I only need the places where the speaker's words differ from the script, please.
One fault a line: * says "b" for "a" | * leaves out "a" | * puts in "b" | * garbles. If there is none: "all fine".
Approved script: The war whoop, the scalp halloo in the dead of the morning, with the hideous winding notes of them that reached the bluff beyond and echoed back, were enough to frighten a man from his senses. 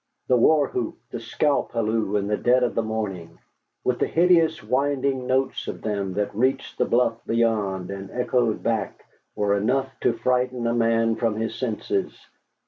all fine